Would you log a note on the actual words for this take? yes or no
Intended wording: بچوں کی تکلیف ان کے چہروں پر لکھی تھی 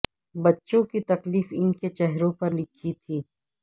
no